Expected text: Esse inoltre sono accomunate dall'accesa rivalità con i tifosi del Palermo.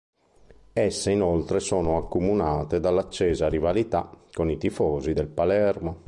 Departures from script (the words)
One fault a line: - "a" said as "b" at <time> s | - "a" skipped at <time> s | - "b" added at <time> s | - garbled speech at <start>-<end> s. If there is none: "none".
none